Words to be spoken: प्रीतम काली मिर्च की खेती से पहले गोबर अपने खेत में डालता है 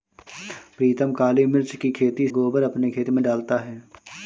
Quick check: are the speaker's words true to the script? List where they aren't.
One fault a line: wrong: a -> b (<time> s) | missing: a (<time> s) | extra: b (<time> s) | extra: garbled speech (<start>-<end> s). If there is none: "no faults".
missing: से पहले (2.3 s)